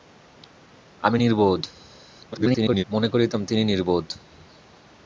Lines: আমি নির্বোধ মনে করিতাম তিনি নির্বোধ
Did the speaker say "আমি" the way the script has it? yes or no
yes